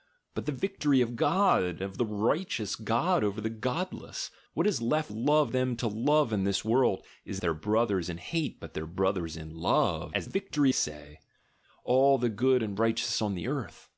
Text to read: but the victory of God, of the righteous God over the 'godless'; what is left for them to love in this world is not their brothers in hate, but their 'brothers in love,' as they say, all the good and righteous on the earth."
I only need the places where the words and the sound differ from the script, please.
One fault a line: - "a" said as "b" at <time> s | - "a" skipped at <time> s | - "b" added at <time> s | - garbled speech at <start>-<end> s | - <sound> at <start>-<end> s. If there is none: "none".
- "for" said as "love" at 5.1 s
- "not" skipped at 7.4 s
- "they" said as "victory" at 10.2 s